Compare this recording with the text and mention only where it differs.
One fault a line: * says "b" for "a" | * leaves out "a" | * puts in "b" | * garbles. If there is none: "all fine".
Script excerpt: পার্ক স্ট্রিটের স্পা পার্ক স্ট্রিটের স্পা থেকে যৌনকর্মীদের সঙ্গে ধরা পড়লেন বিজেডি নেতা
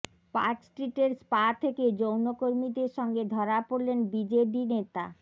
* leaves out "পার্ক স্ট্রিটের স্পা"